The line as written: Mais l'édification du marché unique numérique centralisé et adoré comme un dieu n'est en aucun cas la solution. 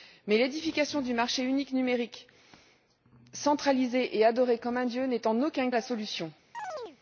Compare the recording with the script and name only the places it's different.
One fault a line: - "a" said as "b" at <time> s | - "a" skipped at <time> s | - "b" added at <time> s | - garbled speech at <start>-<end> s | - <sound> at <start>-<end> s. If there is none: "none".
- "cas" skipped at 5.7 s
- chirp at 6.5-7.0 s